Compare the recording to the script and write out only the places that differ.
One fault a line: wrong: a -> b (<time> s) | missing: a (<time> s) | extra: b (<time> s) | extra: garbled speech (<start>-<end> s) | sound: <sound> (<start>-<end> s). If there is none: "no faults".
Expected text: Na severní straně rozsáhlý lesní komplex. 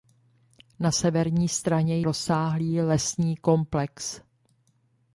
no faults